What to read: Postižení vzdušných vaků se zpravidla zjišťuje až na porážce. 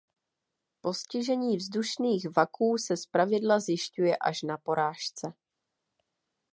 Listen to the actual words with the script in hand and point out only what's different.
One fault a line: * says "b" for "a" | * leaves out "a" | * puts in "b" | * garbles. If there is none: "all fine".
all fine